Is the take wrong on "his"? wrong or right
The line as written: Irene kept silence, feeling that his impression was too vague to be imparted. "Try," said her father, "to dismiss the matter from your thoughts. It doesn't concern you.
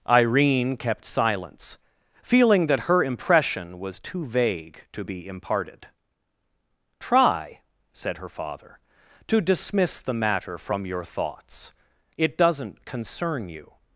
wrong